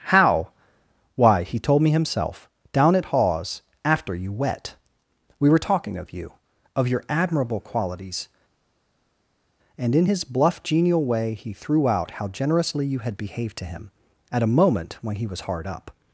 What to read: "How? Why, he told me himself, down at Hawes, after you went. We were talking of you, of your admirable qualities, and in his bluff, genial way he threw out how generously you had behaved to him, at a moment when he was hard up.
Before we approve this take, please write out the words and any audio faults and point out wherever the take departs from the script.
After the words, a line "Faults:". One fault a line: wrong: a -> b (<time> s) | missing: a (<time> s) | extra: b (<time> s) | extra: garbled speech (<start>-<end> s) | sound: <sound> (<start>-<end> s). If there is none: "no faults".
"How? Why, he told me himself, down at Hawes, after you wet. We were talking of you, of your admirable qualities, and in his bluff, genial way he threw out how generously you had behaved to him, at a moment when he was hard up.
Faults:
wrong: went -> wet (4.3 s)